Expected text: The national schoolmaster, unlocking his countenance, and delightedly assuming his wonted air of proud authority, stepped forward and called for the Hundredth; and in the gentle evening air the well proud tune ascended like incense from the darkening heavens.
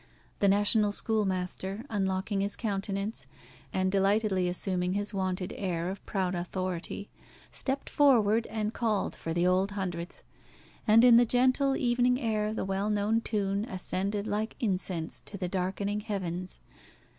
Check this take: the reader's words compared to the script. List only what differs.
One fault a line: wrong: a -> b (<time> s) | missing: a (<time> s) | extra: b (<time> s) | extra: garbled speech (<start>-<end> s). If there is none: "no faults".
extra: Old (9.4 s)
wrong: proud -> known (12.9 s)
wrong: from -> to (15.2 s)